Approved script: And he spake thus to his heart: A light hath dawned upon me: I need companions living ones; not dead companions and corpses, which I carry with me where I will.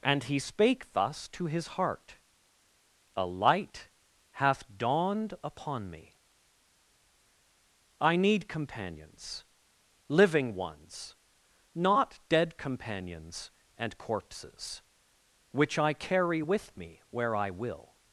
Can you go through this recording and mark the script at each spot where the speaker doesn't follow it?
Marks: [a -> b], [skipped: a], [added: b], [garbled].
And he spake thus to his heart: A light hath dawned upon me: I need companions living ones; not dead companions and corpses, which I carry with me where I will.